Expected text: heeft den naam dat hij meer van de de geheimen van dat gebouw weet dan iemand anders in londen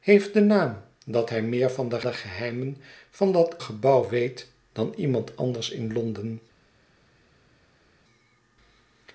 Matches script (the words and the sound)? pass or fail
pass